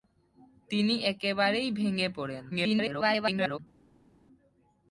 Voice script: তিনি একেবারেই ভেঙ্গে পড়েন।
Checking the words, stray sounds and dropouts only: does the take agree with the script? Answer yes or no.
no